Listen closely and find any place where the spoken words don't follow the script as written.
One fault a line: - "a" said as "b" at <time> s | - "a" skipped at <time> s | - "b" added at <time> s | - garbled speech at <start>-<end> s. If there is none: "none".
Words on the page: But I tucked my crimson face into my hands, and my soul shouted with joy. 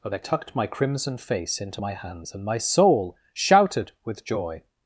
none